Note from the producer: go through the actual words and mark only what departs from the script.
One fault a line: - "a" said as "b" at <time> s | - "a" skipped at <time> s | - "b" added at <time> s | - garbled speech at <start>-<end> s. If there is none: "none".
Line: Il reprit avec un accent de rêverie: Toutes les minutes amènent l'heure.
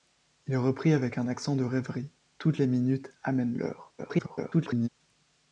- garbled speech at 4.0-4.9 s